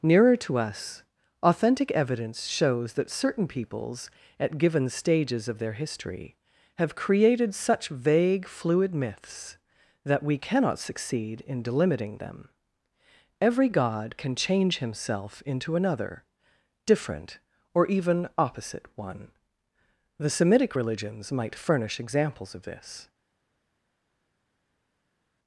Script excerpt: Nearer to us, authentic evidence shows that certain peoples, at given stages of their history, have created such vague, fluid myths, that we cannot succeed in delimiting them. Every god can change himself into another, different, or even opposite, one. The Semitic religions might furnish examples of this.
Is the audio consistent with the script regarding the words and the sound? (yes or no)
yes